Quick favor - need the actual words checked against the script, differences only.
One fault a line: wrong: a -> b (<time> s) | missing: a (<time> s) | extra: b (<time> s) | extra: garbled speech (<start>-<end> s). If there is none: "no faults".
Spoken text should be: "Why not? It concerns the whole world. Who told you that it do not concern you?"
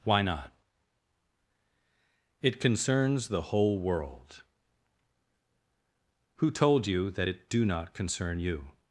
no faults